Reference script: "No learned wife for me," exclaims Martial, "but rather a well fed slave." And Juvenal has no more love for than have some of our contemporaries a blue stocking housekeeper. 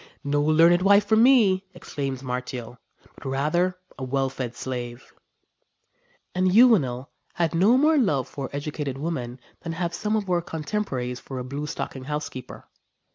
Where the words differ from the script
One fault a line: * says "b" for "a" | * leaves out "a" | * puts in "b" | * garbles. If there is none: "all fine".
* says "had" for "has"
* puts in "educated women"
* puts in "for"